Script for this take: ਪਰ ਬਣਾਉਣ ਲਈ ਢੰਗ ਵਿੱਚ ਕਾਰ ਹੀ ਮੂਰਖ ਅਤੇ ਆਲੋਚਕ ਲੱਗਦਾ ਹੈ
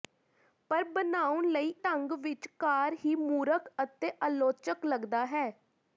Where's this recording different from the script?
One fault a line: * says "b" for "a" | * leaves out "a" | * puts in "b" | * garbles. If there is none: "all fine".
all fine